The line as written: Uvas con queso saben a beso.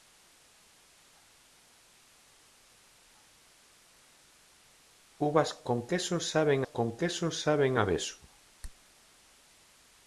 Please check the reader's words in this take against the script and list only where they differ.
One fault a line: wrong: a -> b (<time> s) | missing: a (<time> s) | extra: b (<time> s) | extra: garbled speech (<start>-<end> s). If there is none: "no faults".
extra: con queso saben (6.6 s)